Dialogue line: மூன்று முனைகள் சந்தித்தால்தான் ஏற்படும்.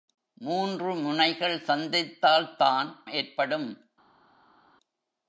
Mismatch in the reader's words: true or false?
false